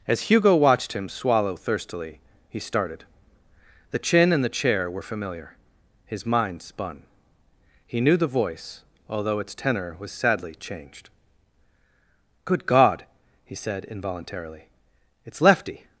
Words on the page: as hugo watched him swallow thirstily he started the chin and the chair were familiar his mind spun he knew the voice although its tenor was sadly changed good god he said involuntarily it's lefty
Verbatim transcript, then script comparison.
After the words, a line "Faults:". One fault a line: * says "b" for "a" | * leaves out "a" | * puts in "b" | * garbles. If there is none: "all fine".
as hugo watched him swallow thirstily he started the chin and the chair were familiar his mind spun he knew the voice although its tenor was sadly changed good god he said involuntarily it's lefty
Faults:
all fine